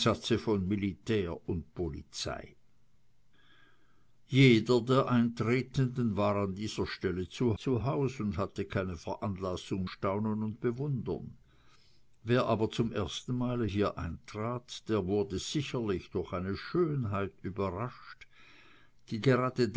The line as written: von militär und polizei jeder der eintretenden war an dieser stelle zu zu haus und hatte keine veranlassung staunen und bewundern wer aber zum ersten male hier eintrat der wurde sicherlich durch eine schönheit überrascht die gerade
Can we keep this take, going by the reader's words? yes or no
yes